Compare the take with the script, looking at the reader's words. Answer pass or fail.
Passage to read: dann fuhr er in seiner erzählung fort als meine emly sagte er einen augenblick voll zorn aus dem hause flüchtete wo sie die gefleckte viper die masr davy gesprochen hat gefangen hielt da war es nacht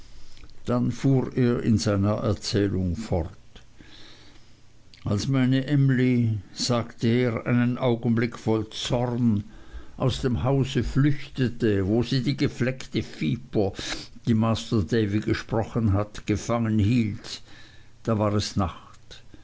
pass